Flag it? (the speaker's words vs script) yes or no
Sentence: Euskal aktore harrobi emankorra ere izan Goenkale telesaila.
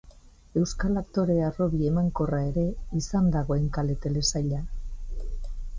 yes